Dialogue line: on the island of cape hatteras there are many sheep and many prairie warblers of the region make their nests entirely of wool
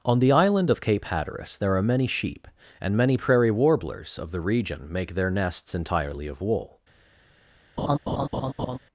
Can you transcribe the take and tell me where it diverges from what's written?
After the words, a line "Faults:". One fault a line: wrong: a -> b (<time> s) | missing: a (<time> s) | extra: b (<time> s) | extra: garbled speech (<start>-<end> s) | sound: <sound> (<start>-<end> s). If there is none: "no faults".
on the island of cape hatteras there are many sheep and many prairie warblers of the region make their nests entirely of wool
Faults:
sound: laugh (7.8-8.8 s)